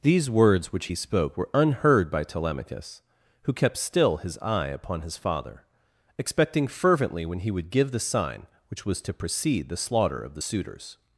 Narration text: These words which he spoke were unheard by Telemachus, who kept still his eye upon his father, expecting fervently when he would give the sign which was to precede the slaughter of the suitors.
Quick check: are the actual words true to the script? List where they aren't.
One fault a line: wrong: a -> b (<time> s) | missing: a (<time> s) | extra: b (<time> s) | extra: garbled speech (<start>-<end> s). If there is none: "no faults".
no faults